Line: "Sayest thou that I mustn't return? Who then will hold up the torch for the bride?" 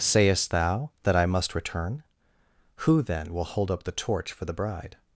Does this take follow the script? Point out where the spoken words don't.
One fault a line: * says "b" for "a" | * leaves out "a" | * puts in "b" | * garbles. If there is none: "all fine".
* says "must" for "mustn't"